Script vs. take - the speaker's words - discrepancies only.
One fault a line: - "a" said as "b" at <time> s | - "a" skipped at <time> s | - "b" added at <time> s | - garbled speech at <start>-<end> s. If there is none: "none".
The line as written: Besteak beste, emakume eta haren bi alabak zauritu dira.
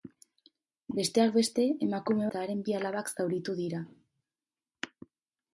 none